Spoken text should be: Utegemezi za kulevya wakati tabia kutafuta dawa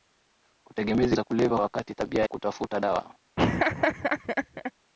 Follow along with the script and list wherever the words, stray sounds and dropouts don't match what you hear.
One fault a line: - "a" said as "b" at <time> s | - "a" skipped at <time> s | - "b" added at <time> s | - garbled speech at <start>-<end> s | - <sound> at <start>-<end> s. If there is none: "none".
- laugh at 3.4-4.7 s